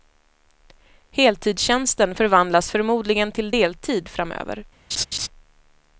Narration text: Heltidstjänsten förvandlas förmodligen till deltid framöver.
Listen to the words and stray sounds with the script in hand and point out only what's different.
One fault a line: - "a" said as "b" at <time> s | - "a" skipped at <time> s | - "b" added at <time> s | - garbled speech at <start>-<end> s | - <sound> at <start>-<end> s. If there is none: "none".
- laugh at 4.9-5.3 s